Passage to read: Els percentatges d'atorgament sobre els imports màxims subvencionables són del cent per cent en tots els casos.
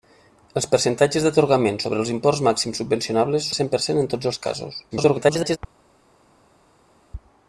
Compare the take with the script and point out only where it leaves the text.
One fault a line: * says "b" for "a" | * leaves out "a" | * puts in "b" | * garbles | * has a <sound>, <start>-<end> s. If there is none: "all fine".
* leaves out "són"
* garbles